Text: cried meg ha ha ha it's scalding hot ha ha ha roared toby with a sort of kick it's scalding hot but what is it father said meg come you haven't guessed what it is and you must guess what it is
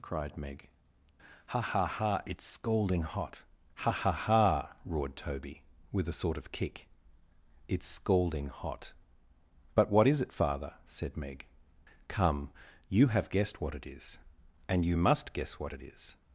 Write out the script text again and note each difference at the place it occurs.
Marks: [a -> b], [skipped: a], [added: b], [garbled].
cried meg ha ha ha it's scalding hot ha ha ha roared toby with a sort of kick it's scalding hot but what is it father said meg come you [haven't -> have] guessed what it is and you must guess what it is